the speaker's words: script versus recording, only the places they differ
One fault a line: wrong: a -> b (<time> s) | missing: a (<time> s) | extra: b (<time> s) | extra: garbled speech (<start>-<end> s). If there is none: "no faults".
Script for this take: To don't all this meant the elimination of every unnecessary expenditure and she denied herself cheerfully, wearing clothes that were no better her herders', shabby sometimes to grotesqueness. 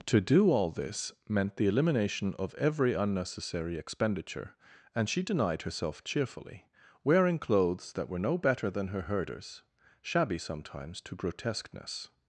wrong: don't -> do (0.2 s)
extra: than (8.7 s)